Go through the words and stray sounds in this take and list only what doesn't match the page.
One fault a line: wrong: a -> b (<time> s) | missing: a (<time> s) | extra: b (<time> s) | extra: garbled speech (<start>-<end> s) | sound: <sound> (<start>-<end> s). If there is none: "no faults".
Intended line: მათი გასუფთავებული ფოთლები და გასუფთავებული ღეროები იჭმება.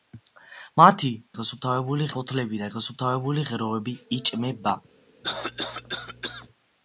sound: cough (5.2-6.5 s)